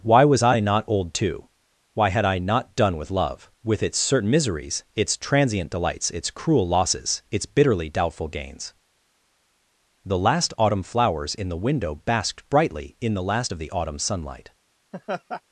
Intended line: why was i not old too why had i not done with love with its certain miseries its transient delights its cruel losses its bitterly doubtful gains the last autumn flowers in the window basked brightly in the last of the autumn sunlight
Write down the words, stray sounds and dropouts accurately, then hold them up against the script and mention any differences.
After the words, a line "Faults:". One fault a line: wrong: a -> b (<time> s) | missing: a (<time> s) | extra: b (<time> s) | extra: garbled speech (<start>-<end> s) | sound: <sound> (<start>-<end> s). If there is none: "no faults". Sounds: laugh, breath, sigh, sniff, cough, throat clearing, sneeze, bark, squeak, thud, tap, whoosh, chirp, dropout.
why was i not old too why had i not done with love with its certain miseries its transient delights its cruel losses its bitterly doubtful gains the last autumn flowers in the window basked brightly in the last of the autumn sunlight
Faults:
sound: laugh (14.9-15.4 s)